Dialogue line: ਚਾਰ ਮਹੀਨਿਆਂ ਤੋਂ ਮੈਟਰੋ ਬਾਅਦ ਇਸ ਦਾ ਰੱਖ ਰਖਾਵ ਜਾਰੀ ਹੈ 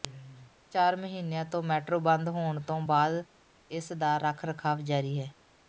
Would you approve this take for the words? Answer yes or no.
no